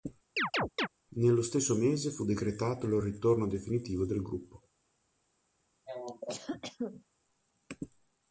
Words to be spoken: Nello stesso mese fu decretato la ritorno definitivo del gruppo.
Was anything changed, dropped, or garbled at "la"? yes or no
yes